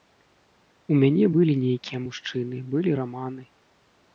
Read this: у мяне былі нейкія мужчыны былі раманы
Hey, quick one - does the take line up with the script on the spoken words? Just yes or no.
yes